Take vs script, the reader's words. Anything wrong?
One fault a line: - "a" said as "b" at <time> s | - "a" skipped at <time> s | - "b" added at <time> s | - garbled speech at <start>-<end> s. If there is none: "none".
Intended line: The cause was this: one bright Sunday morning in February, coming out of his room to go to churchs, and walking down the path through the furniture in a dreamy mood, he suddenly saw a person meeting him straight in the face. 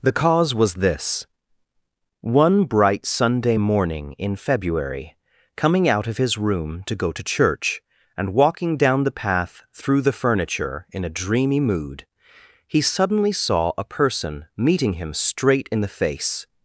- "churchs" said as "church" at 7.2 s